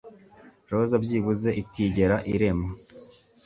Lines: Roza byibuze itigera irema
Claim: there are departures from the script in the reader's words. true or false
false